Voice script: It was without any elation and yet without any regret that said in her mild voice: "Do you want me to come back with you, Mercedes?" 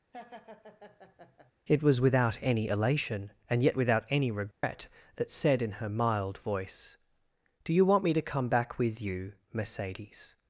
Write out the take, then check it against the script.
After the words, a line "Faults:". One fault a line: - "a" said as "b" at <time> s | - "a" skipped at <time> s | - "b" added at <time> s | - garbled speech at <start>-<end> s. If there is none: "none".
It was without any elation and yet without any regret that said in her mild voice: "Do you want me to come back with you, Mercedes?"
Faults:
none